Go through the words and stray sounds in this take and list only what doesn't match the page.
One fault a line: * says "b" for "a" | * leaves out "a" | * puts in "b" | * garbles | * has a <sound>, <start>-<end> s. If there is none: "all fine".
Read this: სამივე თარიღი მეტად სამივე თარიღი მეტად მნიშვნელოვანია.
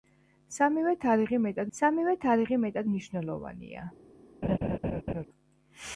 * has a laugh, 4.4-5.2 s